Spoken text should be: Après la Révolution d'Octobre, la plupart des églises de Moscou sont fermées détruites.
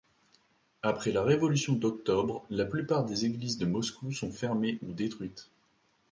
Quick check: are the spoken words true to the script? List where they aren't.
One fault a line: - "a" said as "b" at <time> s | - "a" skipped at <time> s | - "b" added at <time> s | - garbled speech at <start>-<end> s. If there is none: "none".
- "ou" added at 4.8 s